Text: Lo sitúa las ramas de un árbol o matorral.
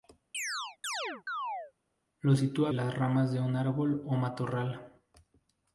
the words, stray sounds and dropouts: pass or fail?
fail